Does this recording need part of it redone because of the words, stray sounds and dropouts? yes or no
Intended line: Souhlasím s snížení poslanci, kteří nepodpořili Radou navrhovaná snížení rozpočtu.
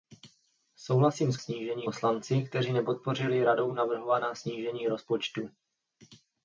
no